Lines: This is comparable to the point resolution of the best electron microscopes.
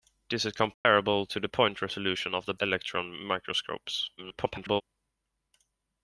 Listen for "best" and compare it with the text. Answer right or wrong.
wrong